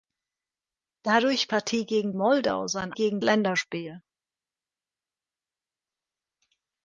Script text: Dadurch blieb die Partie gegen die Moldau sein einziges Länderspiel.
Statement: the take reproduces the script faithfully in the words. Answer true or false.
false